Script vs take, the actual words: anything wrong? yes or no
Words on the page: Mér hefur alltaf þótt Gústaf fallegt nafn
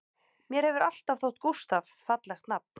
no